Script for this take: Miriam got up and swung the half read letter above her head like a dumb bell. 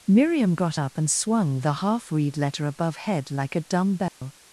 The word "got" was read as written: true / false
true